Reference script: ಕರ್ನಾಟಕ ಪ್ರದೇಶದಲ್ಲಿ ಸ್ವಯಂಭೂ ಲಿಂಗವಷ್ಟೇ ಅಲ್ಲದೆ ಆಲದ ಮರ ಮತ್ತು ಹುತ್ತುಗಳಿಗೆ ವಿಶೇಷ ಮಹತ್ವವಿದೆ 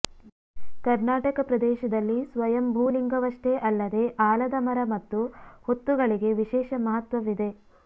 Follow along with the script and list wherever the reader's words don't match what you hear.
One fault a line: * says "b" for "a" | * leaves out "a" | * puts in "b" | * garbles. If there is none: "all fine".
all fine